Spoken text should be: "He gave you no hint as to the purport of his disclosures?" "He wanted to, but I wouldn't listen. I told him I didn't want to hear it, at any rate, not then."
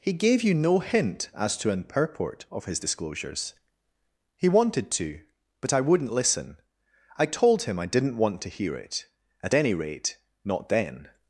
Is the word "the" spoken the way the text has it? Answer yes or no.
no